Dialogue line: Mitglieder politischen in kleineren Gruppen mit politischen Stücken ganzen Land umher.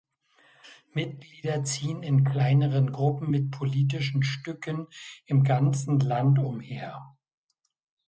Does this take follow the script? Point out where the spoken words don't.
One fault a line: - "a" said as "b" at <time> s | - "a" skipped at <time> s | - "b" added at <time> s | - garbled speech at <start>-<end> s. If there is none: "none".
- "politischen" said as "ziehen" at 1.6 s
- "im" added at 5.3 s